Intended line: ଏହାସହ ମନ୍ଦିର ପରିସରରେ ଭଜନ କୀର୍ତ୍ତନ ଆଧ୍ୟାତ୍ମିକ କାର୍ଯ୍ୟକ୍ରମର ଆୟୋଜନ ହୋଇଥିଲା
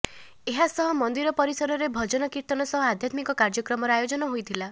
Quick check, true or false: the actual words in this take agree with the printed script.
false